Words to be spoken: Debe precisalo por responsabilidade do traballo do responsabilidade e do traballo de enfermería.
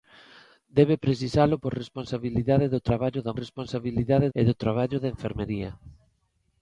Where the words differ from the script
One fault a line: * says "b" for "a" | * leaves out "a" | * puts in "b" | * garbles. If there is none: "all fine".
all fine